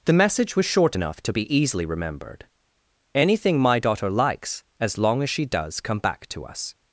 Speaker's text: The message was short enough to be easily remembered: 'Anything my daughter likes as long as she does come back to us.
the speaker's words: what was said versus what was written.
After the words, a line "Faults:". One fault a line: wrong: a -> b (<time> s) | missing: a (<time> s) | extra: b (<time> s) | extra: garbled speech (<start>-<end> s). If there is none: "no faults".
The message was short enough to be easily remembered: 'Anything my daughter likes as long as she does come back to us.
Faults:
no faults